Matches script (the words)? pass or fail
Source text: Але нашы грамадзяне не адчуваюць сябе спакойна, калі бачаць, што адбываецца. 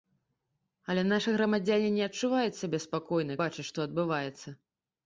fail